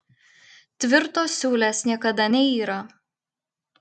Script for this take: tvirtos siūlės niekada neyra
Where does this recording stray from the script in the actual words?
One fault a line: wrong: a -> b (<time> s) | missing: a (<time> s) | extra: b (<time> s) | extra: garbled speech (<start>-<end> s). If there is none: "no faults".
no faults